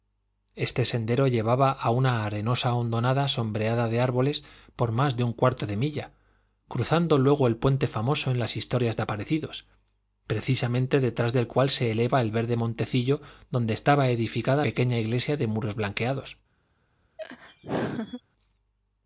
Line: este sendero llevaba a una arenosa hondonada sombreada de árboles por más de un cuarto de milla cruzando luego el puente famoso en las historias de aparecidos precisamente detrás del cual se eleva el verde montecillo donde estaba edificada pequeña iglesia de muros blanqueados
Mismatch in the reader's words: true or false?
false